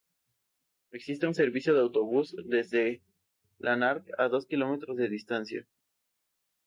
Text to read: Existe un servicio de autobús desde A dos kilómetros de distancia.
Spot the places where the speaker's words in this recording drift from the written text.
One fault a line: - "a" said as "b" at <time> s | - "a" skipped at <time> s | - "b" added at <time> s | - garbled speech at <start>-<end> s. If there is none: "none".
- "Lanark" added at 3.6 s